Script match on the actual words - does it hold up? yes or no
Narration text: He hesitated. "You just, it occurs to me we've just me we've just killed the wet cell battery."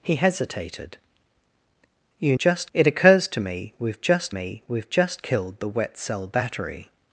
yes